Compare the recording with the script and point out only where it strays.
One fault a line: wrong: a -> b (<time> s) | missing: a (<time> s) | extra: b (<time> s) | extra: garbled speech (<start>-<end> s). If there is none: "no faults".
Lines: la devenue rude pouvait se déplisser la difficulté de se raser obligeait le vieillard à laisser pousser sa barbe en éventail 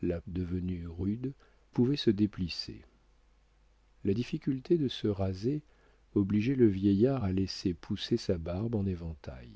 no faults